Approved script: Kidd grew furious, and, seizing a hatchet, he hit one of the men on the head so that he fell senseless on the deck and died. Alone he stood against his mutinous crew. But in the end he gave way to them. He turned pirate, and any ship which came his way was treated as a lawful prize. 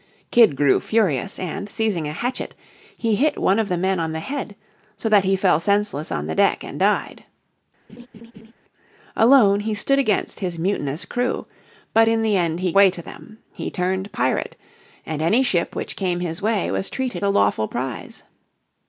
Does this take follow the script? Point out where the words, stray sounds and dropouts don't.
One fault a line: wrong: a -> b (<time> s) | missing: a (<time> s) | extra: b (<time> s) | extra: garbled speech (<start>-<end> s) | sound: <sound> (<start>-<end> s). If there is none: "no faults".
sound: laugh (7.9-8.5 s)
missing: gave (12.7 s)
missing: as (17.2 s)